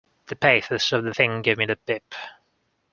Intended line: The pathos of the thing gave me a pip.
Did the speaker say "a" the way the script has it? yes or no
no